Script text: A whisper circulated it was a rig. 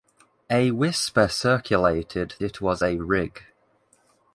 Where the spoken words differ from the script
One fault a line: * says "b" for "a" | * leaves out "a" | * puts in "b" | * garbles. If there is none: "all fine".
all fine